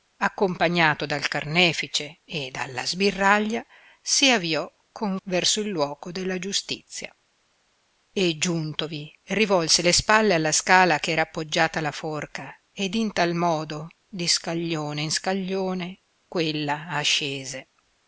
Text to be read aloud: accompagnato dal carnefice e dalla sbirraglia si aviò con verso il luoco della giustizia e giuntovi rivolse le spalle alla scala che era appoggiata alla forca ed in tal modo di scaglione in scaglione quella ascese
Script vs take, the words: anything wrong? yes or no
no